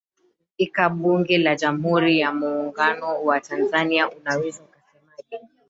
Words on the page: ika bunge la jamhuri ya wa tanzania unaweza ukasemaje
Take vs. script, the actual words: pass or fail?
fail